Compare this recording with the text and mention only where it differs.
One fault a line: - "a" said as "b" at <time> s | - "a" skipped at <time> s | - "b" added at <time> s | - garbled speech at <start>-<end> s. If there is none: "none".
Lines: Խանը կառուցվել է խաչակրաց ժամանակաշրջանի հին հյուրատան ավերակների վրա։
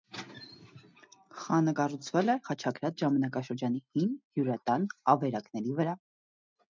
none